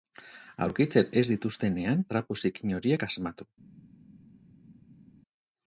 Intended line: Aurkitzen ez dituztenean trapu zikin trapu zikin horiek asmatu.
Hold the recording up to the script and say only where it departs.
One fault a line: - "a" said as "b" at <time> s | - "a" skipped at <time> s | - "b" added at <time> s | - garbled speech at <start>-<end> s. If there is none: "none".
- "trapu zikin" skipped at 2.8 s